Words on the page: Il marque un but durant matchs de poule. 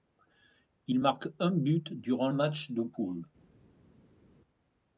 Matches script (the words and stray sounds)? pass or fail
pass